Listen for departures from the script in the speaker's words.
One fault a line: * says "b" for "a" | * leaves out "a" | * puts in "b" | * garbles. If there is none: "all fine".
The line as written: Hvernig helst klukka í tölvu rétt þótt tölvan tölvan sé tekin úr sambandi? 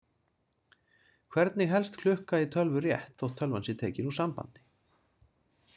* leaves out "tölvan"